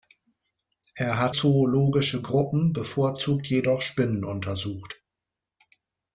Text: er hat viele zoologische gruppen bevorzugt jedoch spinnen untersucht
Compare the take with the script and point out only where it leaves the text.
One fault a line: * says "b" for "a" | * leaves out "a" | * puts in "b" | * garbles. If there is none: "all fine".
* leaves out "viele"